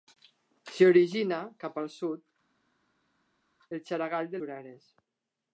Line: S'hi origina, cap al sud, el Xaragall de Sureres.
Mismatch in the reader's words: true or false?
false